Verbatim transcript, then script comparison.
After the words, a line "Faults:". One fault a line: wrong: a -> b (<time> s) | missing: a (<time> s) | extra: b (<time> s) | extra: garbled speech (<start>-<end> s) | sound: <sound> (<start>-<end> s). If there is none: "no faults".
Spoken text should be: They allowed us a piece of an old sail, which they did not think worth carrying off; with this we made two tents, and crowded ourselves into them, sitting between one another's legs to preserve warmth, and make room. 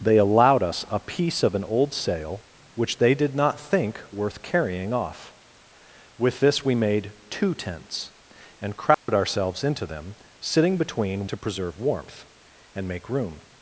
They allowed us a piece of an old sail, which they did not think worth carrying off; with this we made two tents, and crowded ourselves into them, sitting between to preserve warmth, and make room.
Faults:
sound: dropout (8.9-9.1 s)
missing: one another's legs (11.3 s)